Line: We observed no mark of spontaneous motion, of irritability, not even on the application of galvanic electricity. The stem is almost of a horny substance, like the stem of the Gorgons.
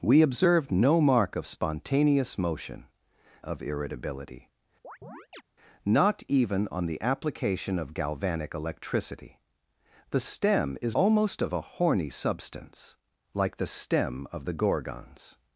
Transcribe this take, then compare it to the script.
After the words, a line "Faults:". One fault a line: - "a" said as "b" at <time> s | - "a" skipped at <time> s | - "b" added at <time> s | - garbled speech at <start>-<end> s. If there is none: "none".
We observed no mark of spontaneous motion, of irritability, not even on the application of galvanic electricity. The stem is almost of a horny substance, like the stem of the Gorgons.
Faults:
none